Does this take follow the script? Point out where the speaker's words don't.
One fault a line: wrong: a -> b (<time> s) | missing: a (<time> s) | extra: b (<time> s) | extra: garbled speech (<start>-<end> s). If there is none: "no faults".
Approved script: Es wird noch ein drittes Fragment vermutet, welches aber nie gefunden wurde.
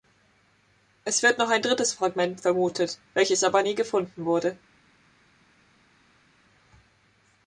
no faults